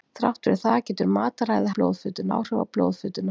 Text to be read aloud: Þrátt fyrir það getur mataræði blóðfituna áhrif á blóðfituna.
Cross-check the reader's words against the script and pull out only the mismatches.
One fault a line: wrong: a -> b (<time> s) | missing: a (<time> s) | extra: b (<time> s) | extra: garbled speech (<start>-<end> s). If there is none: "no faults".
no faults